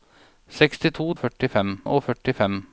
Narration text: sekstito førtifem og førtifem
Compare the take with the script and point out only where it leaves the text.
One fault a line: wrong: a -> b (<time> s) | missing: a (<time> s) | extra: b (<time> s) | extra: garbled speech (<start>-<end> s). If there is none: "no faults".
no faults